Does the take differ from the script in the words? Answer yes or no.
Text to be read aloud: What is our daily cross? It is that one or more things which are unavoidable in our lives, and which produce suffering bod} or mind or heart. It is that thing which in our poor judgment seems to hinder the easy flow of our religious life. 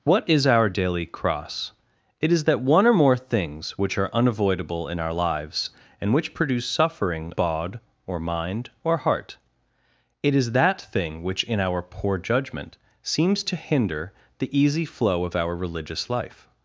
no